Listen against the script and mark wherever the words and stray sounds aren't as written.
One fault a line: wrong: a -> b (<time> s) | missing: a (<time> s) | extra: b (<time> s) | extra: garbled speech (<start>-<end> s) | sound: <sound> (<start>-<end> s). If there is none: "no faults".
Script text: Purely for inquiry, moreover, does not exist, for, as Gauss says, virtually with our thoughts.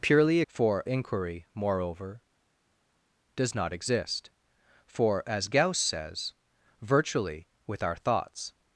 no faults